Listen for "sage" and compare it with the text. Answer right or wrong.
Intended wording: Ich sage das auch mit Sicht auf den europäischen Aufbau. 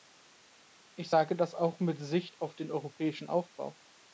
right